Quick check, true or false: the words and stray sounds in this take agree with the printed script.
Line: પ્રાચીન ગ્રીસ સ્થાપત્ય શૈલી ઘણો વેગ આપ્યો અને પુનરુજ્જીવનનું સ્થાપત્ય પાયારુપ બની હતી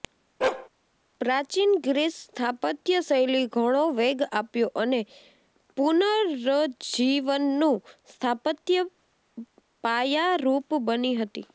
false